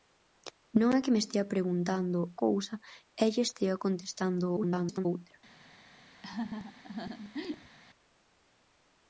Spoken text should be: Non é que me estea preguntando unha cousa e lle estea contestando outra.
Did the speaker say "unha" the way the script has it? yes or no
no